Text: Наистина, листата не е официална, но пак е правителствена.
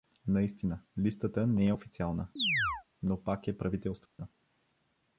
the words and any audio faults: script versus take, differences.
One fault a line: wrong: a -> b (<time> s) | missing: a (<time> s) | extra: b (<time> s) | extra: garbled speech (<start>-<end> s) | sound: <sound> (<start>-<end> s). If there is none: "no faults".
sound: chirp (2.4-2.8 s)
sound: dropout (4.1-4.2 s)